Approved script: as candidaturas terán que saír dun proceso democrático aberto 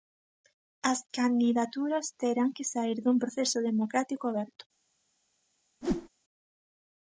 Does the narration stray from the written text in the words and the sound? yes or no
yes